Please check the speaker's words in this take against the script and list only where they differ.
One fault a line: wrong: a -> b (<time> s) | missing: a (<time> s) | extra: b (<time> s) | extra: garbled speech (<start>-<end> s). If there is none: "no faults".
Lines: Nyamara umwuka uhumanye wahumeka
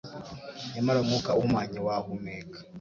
no faults